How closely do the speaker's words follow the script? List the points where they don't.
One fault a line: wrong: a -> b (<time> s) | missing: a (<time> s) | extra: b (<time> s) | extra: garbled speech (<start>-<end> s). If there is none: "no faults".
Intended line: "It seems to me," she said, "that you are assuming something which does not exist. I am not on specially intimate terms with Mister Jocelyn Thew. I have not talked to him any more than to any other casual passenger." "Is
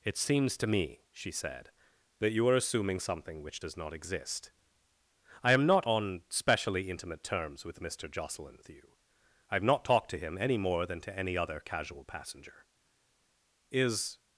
no faults